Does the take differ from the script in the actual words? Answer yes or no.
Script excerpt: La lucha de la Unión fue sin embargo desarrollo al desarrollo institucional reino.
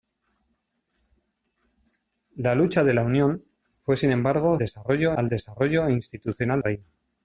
no